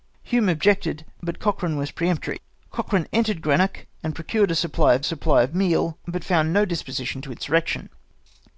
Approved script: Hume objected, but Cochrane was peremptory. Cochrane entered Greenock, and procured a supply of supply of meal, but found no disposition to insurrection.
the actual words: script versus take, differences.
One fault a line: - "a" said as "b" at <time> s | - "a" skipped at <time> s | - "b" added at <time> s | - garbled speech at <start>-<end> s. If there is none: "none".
none